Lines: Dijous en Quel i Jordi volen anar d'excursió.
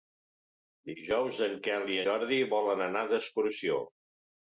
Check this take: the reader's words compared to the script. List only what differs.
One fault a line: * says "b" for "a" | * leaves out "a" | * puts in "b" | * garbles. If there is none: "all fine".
all fine